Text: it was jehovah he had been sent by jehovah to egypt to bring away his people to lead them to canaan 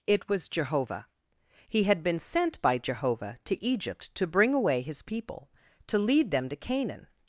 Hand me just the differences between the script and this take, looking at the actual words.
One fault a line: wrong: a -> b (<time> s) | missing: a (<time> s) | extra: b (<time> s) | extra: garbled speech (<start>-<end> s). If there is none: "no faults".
no faults